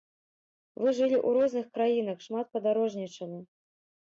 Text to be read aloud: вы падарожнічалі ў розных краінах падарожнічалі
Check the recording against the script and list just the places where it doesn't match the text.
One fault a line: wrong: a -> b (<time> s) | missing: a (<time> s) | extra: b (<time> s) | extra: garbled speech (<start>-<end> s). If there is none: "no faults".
wrong: падарожнічалі -> жылі (1.0 s)
extra: шмат (2.3 s)